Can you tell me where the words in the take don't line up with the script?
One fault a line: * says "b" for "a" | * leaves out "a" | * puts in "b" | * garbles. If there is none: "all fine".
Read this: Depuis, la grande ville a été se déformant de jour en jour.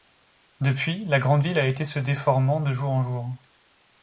all fine